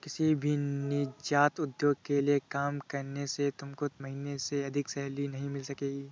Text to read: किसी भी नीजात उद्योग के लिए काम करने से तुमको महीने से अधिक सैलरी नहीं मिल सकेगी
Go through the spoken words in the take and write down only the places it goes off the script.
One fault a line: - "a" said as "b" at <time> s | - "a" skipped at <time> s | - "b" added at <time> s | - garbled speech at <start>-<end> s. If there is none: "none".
none